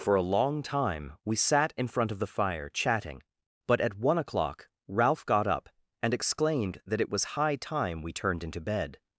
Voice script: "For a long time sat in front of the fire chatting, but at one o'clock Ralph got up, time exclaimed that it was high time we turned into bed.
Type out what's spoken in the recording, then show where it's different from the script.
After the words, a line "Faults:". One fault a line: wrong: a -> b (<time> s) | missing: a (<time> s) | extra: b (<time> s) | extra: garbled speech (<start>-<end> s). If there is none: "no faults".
"For a long time we sat in front of the fire chatting, but at one o'clock Ralph got up, and exclaimed that it was high time we turned into bed.
Faults:
extra: we (1.2 s)
wrong: time -> and (6.0 s)